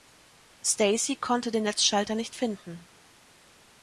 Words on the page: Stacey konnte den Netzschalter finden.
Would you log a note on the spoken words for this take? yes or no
yes